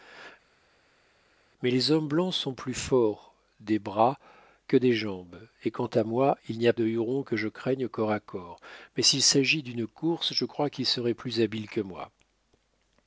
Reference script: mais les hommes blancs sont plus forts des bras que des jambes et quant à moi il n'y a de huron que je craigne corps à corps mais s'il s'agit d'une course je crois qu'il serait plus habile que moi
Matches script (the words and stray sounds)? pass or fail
pass